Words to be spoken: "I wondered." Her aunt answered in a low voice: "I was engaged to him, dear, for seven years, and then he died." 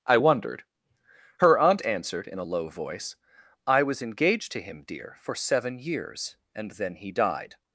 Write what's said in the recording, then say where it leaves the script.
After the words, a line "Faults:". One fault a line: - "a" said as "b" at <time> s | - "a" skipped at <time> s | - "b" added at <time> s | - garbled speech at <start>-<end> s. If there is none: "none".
"I wondered." Her aunt answered in a low voice: "I was engaged to him, dear, for seven years, and then he died."
Faults:
none